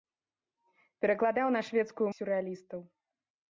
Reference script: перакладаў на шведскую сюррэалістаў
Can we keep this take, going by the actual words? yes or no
yes